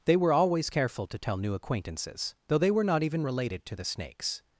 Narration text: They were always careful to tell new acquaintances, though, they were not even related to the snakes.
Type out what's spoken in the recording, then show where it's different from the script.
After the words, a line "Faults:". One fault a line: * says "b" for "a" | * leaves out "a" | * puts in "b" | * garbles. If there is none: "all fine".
They were always careful to tell new acquaintances, though, they were not even related to the snakes.
Faults:
all fine